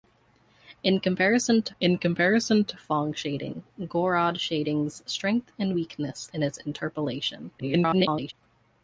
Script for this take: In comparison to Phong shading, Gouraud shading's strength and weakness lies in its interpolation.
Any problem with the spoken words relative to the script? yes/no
yes